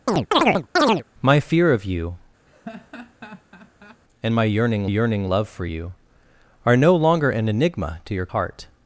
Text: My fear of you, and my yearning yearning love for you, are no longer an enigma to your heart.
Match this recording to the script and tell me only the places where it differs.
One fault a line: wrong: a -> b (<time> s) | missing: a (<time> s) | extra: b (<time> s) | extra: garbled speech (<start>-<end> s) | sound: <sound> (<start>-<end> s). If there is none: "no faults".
sound: chirp (0.1-1.0 s)
sound: laugh (2.5-4.0 s)